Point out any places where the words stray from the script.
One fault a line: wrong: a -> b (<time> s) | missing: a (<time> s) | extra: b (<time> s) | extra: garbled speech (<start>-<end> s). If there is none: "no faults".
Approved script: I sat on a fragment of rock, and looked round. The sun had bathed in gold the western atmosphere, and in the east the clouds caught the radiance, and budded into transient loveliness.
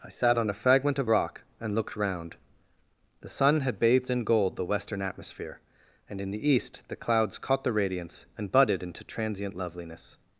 no faults